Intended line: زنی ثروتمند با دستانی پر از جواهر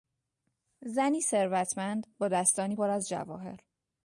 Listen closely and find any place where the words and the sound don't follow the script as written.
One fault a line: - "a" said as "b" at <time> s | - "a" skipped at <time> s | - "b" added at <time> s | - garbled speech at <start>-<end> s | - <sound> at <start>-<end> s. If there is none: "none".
none